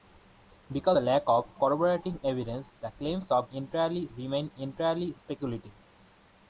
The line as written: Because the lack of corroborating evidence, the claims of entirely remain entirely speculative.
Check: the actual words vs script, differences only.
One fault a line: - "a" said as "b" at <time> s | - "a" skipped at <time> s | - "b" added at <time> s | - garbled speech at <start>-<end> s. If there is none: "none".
none